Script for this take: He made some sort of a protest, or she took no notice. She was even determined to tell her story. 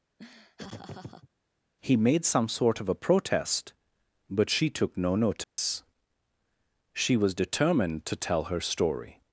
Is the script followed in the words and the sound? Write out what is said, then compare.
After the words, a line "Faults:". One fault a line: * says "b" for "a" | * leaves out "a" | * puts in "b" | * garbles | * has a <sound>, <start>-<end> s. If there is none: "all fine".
He made some sort of a protest, but she took no notice. She was determined to tell her story.
Faults:
* has a laugh, 0.2-1.3 s
* says "but" for "or"
* has a dropout, 5.4-5.6 s
* leaves out "even"